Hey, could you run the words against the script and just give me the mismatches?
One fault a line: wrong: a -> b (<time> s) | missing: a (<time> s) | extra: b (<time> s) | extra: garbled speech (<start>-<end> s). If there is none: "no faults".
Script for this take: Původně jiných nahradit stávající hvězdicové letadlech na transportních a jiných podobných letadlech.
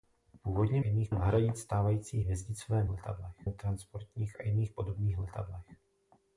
no faults